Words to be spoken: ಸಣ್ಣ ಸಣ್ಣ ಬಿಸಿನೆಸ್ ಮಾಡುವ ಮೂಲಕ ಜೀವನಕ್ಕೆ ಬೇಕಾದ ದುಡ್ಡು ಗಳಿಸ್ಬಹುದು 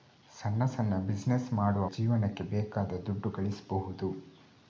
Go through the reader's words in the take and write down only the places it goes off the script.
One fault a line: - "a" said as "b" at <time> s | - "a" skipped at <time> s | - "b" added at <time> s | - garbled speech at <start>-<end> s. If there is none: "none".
- "ಮೂಲಕ" skipped at 1.9 s